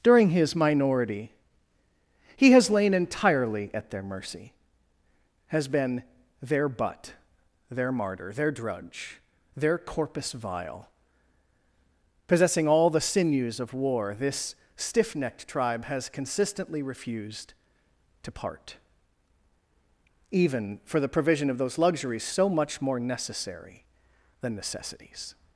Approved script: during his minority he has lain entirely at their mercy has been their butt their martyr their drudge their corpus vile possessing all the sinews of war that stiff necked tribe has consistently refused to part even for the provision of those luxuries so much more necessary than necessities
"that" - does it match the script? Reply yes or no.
no